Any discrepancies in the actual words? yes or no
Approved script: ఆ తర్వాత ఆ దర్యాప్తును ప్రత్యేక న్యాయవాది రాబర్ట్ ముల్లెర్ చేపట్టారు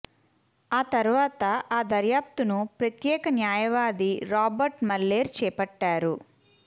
no